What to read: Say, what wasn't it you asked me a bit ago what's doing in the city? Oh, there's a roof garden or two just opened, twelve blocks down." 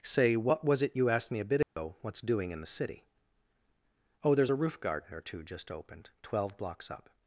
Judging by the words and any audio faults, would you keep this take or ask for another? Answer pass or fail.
fail